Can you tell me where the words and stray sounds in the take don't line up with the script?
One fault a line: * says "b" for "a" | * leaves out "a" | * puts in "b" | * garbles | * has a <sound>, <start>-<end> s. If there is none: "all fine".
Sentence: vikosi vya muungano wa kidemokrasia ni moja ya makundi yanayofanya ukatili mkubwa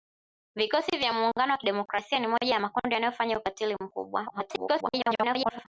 * garbles